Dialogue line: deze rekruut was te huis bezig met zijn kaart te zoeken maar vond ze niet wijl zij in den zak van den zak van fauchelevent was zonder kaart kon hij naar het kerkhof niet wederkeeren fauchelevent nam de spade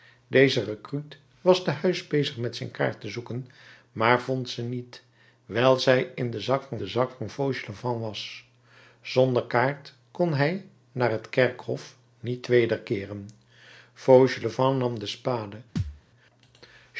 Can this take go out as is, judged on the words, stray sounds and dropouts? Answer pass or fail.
fail